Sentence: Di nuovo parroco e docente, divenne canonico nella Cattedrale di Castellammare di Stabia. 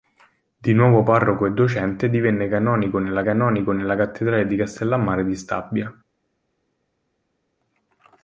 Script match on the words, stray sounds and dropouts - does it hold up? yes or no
no